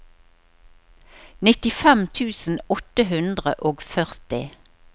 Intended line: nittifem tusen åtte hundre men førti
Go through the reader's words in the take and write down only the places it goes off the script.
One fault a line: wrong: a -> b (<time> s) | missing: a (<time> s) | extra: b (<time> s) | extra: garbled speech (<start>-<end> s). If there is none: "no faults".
wrong: men -> og (3.7 s)